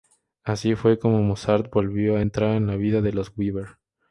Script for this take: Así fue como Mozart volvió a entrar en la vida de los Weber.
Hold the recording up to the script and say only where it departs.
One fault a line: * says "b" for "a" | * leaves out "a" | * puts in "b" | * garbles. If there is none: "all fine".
all fine